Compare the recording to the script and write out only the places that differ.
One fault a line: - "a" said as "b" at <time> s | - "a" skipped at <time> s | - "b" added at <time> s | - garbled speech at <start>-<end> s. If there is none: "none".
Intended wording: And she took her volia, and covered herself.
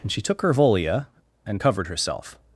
none